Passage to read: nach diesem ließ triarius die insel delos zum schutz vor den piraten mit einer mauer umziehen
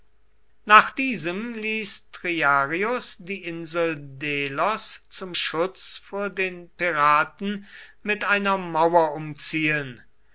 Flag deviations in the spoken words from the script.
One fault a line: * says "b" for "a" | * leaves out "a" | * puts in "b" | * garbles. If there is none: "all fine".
all fine